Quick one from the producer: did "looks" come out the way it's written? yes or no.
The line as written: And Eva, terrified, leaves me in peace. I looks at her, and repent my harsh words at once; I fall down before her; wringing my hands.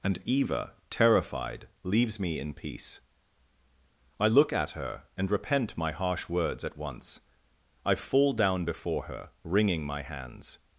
no